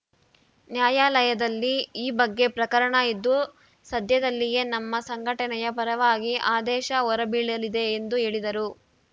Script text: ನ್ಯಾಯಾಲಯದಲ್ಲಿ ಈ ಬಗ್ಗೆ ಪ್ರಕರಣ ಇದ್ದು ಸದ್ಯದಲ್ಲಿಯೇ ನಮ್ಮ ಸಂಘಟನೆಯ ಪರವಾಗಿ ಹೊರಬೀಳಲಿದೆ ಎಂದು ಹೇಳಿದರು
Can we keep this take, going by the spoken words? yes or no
no